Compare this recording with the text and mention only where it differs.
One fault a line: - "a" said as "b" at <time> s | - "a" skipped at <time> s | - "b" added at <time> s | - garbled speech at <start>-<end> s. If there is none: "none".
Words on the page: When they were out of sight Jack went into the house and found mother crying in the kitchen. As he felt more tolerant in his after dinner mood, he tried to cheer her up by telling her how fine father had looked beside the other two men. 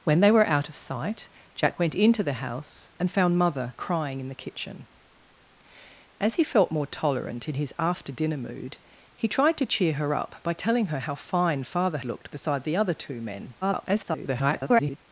- "had" skipped at 12.0 s
- garbled speech at 13.6-15.0 s